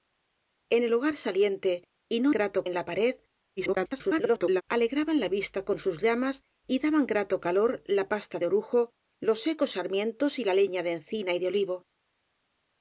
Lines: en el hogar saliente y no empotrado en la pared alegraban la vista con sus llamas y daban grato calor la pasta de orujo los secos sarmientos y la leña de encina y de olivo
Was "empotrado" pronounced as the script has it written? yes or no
no